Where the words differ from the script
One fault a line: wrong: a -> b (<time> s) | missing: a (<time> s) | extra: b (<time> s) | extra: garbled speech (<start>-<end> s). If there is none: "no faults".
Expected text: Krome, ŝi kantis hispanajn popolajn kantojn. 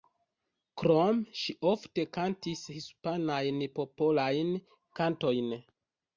extra: ofte (1.7 s)